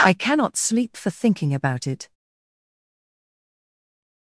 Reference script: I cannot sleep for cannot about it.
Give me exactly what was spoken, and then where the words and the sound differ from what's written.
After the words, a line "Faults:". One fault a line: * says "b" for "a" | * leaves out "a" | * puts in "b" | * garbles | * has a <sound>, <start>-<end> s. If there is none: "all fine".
I cannot sleep for thinking about it.
Faults:
* says "thinking" for "cannot"